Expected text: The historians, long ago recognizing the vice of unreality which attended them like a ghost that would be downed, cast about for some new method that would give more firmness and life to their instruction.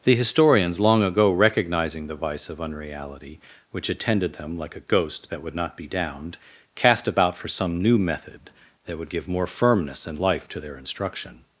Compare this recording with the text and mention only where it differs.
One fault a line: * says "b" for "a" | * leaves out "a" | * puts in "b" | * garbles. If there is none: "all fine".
* puts in "not"